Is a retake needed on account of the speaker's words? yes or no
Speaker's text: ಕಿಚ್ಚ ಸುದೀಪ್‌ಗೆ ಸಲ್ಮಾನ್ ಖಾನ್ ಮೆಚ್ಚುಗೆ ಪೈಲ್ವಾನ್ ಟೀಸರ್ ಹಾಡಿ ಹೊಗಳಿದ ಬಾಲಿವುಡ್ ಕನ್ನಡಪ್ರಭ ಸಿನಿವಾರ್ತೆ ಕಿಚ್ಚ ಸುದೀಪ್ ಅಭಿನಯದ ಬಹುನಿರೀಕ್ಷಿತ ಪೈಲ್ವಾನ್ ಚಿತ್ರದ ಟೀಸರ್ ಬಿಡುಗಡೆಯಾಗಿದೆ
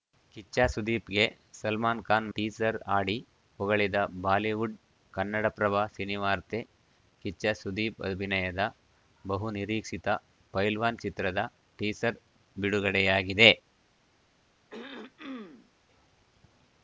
yes